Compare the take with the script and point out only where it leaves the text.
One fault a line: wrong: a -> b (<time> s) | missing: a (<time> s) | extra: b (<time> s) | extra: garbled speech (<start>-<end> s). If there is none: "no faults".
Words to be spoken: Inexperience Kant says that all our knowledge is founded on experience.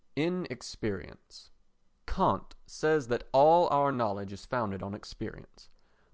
no faults